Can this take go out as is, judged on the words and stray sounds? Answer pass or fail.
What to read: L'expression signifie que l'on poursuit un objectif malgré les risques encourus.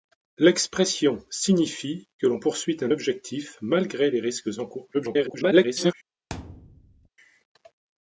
fail